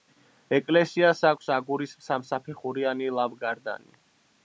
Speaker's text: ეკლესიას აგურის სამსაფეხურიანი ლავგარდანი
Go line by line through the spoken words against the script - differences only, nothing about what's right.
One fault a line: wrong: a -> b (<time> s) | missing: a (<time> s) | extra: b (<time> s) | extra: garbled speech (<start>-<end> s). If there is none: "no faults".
extra: აქვს (1.3 s)